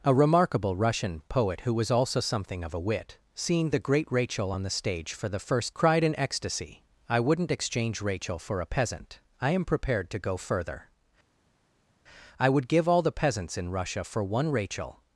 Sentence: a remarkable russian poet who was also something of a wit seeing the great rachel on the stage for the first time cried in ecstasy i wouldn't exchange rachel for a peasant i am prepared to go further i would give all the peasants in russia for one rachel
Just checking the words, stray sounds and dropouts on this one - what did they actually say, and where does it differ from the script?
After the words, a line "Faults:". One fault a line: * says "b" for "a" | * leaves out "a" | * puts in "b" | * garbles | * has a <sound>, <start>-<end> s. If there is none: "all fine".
a remarkable russian poet who was also something of a wit seeing the great rachel on the stage for the first cried in ecstasy i wouldn't exchange rachel for a peasant i am prepared to go further i would give all the peasants in russia for one rachel
Faults:
* leaves out "time"